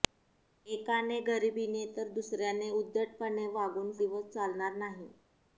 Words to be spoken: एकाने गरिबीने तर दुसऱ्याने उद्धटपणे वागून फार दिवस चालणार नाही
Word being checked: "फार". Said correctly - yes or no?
no